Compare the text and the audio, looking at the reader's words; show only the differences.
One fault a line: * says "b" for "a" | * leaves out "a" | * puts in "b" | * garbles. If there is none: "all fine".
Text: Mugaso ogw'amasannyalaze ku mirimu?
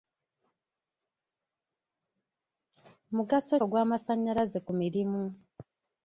all fine